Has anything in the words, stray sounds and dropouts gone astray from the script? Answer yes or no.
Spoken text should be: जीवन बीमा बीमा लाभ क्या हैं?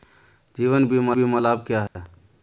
yes